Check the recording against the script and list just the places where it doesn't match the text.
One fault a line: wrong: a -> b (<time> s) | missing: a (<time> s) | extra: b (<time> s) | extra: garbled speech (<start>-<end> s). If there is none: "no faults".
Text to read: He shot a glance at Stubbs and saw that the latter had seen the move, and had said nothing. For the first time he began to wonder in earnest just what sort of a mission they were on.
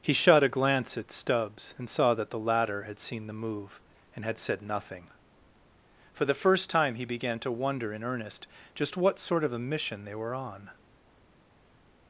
no faults